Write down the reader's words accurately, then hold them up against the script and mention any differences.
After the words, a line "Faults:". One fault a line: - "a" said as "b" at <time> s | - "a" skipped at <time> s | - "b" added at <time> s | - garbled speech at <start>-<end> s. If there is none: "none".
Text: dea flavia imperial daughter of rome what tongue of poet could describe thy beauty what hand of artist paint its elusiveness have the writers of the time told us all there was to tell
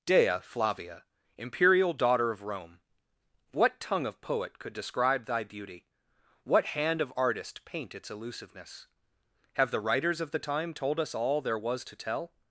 dea flavia imperial daughter of rome what tongue of poet could describe thy beauty what hand of artist paint its elusiveness have the writers of the time told us all there was to tell
Faults:
none